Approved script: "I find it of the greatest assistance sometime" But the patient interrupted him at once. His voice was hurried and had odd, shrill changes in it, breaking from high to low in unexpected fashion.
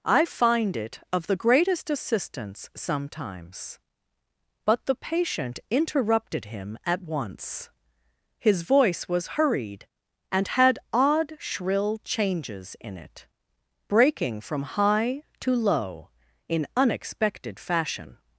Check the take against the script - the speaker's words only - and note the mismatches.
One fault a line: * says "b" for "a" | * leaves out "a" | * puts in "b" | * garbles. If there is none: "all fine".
* says "sometimes" for "sometime"